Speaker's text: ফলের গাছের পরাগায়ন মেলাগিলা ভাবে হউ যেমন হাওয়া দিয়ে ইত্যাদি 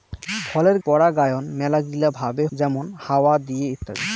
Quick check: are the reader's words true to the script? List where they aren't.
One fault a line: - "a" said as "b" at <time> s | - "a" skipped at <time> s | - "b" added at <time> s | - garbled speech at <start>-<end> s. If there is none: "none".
- "গাছের" skipped at 0.8 s
- "হউ" skipped at 2.4 s